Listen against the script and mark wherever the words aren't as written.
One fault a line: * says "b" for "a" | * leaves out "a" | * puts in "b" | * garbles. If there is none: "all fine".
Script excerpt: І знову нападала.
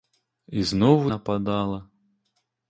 all fine